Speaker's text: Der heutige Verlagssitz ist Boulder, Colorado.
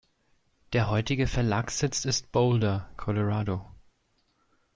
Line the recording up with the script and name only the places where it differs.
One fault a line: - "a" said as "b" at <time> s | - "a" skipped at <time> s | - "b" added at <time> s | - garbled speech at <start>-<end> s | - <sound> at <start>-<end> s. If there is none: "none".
none